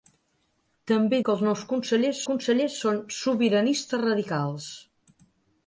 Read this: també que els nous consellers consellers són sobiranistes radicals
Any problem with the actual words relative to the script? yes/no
no